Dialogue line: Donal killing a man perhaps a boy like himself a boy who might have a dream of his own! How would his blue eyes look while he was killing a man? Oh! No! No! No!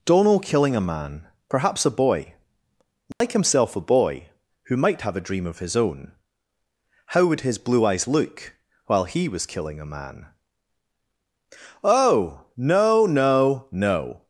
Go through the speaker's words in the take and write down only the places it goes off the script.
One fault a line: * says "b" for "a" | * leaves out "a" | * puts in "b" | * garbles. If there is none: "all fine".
all fine